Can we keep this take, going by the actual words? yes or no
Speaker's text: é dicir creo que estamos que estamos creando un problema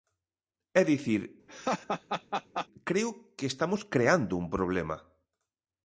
no